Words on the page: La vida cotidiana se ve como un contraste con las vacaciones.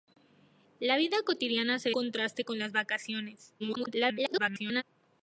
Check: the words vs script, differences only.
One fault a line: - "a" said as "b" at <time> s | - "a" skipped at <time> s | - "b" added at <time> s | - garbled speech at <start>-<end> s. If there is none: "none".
- "ve como un" skipped at 1.9 s
- garbled speech at 3.6-4.8 s